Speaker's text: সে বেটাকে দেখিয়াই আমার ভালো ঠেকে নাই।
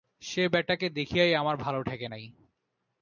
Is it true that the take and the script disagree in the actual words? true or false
false